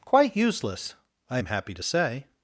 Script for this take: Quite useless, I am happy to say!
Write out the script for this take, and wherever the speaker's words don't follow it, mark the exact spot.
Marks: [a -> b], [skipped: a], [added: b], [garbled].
Quite useless, I am happy to say!